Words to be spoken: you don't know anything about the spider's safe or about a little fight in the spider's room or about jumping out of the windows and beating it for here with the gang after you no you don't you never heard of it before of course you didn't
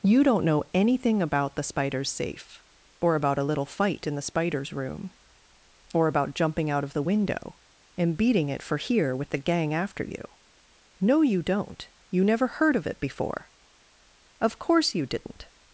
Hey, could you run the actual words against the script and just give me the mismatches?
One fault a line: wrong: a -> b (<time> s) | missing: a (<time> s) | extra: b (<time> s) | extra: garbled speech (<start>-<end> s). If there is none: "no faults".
wrong: windows -> window (7.0 s)